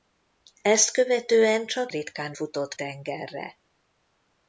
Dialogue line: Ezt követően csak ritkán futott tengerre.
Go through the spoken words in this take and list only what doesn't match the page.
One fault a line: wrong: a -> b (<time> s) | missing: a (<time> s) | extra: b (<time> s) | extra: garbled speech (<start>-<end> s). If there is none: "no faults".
no faults